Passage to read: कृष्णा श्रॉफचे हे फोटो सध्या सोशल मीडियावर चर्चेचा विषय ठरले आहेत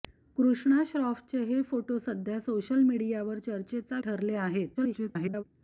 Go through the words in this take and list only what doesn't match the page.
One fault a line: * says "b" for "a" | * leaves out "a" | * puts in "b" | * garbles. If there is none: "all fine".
* leaves out "विषय"
* garbles